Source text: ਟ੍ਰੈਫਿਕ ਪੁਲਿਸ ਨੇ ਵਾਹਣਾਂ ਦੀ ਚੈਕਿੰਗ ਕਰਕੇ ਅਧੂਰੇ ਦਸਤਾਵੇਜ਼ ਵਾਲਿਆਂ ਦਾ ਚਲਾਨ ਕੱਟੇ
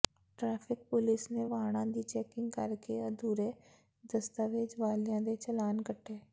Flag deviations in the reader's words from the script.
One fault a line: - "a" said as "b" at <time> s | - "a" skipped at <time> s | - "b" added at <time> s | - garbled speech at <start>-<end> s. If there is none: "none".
- "ਦਾ" said as "ਦੇ" at 5.2 s